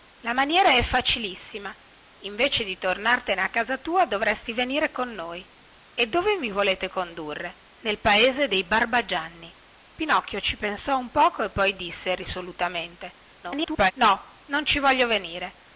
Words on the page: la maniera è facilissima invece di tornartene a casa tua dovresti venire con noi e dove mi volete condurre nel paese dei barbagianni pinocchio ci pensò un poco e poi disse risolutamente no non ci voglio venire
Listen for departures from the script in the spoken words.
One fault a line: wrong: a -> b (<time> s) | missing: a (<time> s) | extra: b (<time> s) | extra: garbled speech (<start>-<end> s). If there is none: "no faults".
extra: garbled speech (13.4-13.9 s)